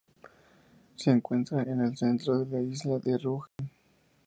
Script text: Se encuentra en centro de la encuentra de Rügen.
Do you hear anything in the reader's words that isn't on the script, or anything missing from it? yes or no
yes